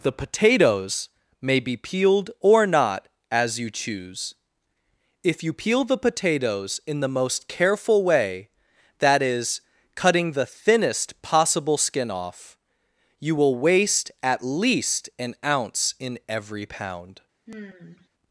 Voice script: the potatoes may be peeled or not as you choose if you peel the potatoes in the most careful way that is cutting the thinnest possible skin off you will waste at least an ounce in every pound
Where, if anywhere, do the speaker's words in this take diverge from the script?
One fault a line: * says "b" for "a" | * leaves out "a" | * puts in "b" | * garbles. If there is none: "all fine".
all fine